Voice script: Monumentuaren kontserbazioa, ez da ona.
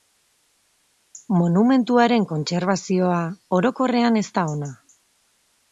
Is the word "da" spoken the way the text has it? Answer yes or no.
yes